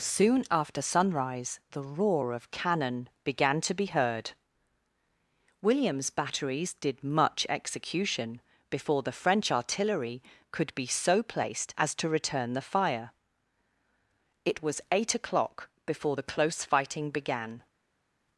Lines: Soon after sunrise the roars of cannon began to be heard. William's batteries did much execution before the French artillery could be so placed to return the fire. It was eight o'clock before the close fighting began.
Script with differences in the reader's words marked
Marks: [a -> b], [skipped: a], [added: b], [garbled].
Soon after sunrise the [roars -> roar] of cannon began to be heard. William's batteries did much execution before the French artillery could be so placed [added: as] to return the fire. It was eight o'clock before the close fighting began.